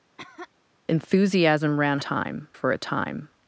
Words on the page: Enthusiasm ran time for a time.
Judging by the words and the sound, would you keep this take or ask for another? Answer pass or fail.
fail